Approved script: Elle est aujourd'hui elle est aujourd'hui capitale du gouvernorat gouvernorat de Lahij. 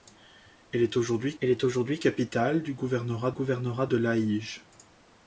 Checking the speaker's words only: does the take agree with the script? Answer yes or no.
yes